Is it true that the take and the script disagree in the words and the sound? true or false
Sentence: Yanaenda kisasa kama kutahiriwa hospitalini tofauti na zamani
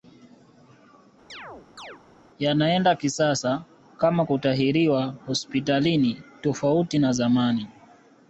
true